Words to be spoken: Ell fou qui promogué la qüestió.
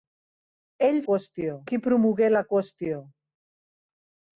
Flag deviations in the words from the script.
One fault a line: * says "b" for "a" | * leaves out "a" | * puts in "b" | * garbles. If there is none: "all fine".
* says "qüestió" for "fou"